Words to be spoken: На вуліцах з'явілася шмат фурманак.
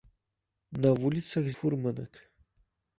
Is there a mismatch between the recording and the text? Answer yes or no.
yes